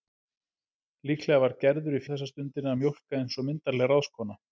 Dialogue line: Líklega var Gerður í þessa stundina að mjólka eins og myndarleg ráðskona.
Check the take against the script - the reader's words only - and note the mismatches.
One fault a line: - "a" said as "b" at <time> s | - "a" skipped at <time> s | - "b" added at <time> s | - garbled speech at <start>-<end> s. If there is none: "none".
none